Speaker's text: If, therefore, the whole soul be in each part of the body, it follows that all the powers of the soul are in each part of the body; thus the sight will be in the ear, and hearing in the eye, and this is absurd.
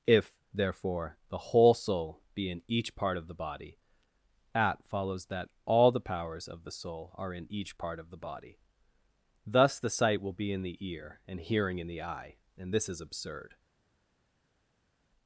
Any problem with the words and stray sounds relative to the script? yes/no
yes